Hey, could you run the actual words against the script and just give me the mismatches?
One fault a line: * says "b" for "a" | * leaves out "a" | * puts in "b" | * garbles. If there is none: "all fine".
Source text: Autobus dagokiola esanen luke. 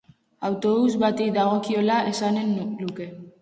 * puts in "bati"